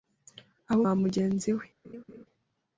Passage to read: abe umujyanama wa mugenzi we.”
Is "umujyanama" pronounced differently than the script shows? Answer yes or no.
yes